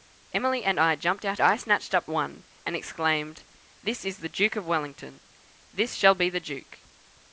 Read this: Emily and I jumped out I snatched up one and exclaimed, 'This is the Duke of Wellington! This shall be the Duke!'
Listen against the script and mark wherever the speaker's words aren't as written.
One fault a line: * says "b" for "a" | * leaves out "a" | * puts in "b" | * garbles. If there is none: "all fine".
all fine